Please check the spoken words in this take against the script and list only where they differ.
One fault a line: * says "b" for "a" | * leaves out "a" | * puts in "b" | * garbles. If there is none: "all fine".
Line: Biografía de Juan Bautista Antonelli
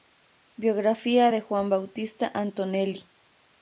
all fine